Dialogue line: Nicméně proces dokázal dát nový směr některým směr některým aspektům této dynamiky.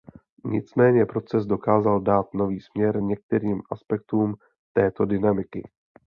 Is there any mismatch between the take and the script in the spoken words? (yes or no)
yes